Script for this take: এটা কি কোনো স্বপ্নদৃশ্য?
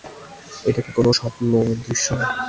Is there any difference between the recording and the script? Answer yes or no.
no